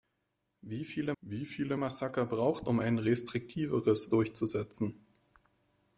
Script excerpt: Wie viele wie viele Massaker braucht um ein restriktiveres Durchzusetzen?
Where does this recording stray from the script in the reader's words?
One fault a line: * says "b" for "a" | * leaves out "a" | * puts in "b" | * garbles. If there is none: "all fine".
all fine